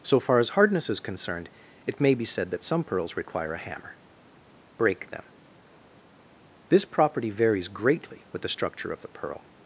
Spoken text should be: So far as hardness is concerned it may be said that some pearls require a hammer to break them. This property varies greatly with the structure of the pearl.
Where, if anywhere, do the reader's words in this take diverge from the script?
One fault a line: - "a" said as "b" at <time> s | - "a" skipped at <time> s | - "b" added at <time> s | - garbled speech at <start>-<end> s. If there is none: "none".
- "to" skipped at 4.0 s